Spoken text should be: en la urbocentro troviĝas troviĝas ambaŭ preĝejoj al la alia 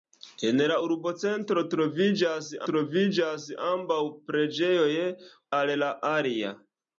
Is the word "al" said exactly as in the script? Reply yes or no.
yes